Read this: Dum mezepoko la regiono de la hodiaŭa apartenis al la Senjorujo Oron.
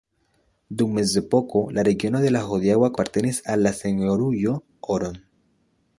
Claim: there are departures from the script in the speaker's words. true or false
false